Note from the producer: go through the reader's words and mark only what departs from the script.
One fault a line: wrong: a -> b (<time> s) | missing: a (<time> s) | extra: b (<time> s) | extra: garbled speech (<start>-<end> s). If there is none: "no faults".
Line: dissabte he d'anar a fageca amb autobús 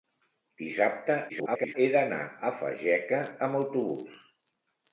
extra: garbled speech (1.3-1.7 s)